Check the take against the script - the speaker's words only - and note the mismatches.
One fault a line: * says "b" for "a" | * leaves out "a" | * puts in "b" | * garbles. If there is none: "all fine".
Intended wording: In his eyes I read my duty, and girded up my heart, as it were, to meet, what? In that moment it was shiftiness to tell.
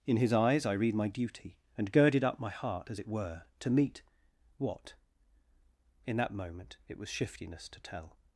all fine